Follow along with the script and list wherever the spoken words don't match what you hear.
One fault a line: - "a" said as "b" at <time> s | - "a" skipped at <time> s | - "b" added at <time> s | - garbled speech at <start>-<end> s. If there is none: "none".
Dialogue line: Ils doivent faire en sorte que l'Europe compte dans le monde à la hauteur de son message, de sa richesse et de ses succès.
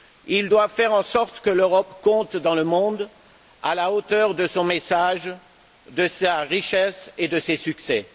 none